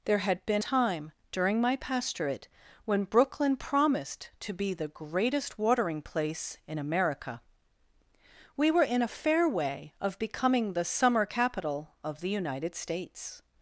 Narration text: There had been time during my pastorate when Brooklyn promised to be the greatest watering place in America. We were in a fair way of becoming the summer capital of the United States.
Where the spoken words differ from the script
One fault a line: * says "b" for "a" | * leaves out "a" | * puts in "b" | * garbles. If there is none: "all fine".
all fine